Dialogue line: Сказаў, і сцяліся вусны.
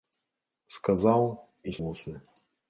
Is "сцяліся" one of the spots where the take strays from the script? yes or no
yes